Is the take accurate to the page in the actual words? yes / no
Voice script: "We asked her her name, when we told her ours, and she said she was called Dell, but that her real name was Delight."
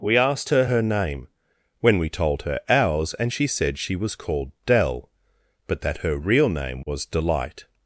yes